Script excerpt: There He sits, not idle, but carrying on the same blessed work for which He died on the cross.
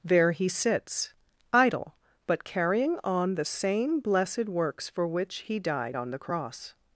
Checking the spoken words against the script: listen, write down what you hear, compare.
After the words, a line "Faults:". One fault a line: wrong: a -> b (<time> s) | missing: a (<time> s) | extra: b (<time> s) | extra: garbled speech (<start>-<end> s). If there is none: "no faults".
There He sits, idle, but carrying on the same blessed works for which He died on the cross.
Faults:
missing: not (1.1 s)
wrong: work -> works (4.5 s)